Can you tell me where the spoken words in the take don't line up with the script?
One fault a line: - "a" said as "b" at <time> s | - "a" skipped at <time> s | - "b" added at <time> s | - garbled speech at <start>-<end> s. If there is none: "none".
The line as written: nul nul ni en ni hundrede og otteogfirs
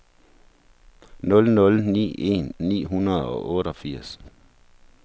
none